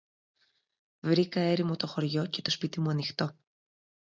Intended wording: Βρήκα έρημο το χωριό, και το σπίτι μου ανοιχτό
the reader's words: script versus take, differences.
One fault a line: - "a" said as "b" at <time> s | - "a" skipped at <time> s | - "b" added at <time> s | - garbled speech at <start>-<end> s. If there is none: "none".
none